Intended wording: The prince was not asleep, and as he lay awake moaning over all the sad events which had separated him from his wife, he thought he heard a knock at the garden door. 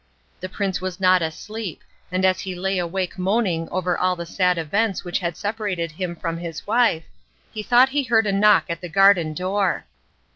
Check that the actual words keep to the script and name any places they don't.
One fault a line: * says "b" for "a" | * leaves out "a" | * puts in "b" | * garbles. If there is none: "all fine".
all fine